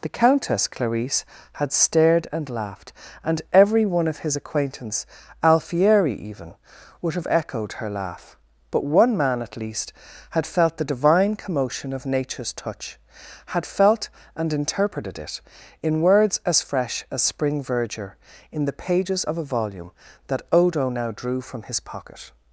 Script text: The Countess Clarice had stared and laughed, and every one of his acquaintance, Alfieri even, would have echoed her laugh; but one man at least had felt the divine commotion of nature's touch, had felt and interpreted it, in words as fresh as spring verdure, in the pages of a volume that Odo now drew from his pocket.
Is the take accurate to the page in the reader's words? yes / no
yes